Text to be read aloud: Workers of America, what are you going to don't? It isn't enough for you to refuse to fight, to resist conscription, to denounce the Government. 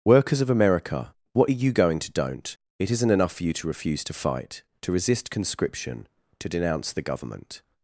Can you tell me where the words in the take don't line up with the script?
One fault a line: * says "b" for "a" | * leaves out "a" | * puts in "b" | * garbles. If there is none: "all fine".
all fine